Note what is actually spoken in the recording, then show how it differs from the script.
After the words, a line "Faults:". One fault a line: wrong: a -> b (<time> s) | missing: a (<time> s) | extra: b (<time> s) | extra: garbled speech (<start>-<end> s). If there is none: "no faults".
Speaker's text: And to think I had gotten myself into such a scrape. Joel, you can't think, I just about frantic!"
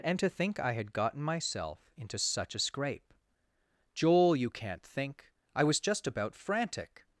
And to think I had gotten myself into such a scrape. Joel, you can't think, I was just about frantic!"
Faults:
extra: was (5.6 s)